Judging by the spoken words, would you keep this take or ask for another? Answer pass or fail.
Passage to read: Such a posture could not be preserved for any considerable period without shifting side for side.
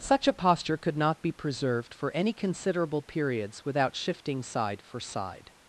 fail